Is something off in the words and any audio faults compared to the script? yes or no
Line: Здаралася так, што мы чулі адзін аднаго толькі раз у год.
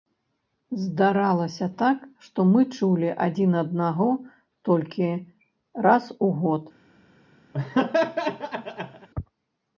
yes